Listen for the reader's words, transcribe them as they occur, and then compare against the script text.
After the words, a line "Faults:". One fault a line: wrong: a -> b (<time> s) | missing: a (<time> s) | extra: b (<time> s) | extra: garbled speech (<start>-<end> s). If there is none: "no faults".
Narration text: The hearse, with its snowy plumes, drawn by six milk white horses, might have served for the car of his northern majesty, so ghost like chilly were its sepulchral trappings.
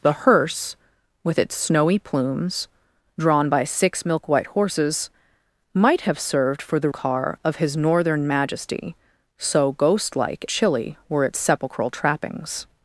The hearse, with its snowy plumes, drawn by six milk white horses, might have served for the car of his northern majesty, so ghost like chilly were its sepulchral trappings.
Faults:
no faults